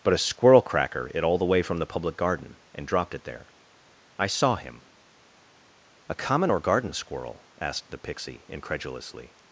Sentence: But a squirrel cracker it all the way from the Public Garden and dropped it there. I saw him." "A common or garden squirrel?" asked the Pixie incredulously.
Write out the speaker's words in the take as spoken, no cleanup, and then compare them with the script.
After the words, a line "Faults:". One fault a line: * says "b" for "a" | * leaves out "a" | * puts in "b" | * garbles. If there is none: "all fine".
But a squirrel cracker it all the way from the Public Garden and dropped it there. I saw him." "A common or garden squirrel?" asked the Pixie incredulously.
Faults:
all fine